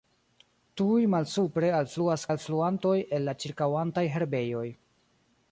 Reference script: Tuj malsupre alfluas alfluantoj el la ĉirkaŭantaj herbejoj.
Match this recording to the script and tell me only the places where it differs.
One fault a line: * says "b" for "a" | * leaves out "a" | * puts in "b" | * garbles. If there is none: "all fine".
all fine